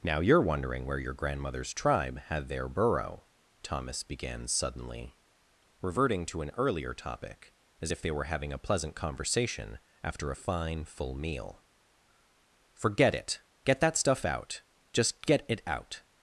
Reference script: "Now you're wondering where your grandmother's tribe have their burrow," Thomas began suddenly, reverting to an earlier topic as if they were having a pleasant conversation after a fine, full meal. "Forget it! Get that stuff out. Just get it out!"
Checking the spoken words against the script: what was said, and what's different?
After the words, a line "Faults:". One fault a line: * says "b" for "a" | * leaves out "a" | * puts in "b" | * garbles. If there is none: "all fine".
"Now you're wondering where your grandmother's tribe had their burrow," Thomas began suddenly, reverting to an earlier topic as if they were having a pleasant conversation after a fine, full meal. "Forget it! Get that stuff out. Just get it out!"
Faults:
* says "had" for "have"